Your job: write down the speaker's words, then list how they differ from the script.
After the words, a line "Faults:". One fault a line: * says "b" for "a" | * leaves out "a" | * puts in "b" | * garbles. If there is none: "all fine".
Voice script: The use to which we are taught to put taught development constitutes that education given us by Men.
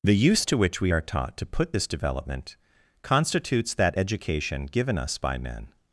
The use to which we are taught to put this development constitutes that education given us by Men.
Faults:
* says "this" for "taught"